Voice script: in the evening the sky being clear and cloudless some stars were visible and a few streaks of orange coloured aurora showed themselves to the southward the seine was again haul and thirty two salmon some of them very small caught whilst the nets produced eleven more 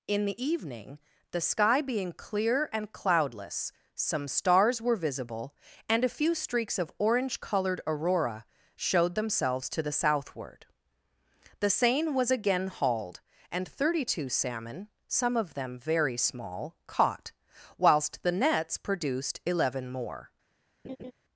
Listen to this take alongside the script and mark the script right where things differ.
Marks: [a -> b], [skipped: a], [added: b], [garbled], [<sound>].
in the evening the sky being clear and cloudless some stars were visible and a few streaks of orange coloured aurora showed themselves to the southward the seine was again [haul -> hauled] and thirty two salmon some of them very small caught whilst the nets produced eleven more [laugh]